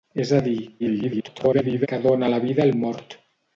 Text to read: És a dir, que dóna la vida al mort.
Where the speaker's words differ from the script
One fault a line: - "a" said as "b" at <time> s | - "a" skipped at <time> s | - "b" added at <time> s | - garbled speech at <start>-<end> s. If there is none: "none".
- garbled speech at 0.8-1.9 s